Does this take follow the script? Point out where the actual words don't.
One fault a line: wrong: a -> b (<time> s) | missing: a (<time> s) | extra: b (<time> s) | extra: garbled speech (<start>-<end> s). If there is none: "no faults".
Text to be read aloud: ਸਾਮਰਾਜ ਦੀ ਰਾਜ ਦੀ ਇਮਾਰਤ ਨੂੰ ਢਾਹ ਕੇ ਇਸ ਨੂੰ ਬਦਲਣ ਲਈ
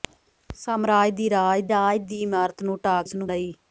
extra: ਰਾਜ (1.7 s)
missing: ਕੇ (3.0 s)
missing: ਬਦਲਣ (3.3 s)